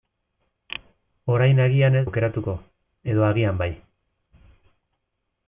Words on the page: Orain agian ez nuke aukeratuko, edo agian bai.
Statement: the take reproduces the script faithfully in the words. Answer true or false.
false